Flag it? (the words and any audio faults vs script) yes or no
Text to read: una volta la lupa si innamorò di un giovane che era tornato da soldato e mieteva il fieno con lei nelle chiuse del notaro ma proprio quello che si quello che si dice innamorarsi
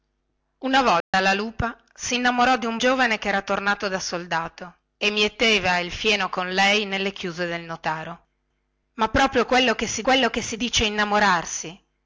yes